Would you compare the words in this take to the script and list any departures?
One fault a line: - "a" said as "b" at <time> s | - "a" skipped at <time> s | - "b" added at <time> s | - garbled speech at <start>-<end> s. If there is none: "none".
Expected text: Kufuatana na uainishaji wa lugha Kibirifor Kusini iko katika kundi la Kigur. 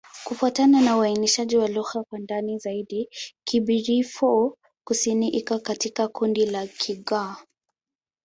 - "kwa ndani zaidi" added at 2.0 s